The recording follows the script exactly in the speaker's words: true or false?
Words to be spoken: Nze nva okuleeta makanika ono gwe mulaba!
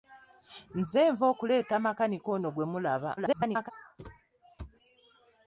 false